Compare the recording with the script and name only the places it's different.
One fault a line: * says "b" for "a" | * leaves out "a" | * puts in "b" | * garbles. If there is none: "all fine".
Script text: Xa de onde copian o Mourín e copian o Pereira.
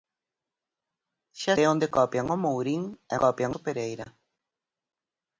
all fine